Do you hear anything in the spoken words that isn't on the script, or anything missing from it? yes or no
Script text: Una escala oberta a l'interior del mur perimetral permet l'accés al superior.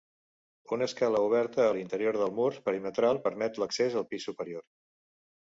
yes